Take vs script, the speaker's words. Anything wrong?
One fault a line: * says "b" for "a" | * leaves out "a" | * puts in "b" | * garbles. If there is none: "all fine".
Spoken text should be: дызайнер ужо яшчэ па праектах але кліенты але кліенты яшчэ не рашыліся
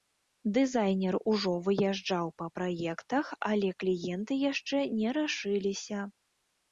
* says "выязджаў" for "яшчэ"
* leaves out "але кліенты"